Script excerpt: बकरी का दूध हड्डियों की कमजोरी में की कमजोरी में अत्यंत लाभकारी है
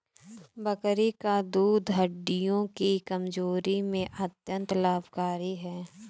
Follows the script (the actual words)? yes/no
no